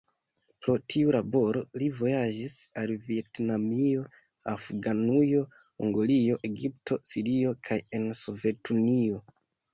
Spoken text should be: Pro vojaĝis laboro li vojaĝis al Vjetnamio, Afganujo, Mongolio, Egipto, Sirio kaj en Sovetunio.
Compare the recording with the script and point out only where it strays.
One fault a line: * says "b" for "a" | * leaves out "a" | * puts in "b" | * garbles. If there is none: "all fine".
* says "tiu" for "vojaĝis"